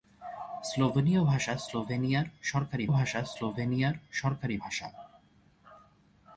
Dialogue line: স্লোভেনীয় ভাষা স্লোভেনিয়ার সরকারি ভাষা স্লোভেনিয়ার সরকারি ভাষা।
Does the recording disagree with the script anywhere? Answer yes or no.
no